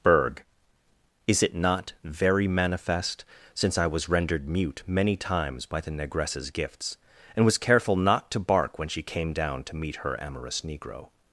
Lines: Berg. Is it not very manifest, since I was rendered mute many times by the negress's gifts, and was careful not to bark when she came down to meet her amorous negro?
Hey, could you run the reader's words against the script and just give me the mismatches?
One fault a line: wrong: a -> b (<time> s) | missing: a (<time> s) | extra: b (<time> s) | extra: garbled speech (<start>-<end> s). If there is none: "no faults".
no faults